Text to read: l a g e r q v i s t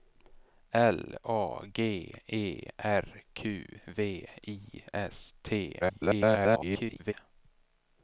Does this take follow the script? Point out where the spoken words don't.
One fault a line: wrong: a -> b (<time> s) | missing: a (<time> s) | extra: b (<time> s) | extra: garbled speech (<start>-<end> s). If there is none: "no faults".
extra: garbled speech (5.8-7.1 s)